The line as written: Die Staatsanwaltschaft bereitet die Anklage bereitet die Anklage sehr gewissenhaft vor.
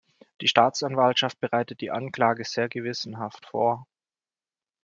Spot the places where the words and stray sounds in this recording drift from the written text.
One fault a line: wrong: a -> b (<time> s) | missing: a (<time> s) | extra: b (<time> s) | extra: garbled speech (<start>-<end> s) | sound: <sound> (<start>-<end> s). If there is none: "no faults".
missing: bereitet die Anklage (2.4 s)